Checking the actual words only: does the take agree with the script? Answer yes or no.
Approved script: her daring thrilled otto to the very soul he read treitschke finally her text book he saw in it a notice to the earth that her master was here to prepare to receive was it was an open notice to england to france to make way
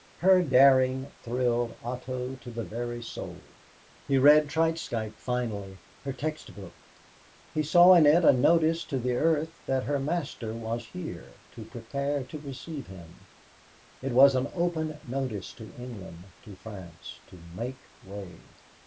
no